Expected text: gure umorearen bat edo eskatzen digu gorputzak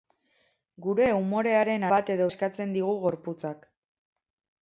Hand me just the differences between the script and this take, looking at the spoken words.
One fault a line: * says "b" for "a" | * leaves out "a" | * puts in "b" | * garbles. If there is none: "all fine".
all fine